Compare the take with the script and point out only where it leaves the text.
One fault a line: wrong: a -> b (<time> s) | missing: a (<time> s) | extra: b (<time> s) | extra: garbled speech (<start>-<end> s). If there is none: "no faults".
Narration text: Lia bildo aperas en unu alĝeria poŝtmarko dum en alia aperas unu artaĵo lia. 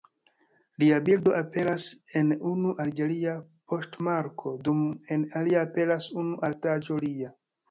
no faults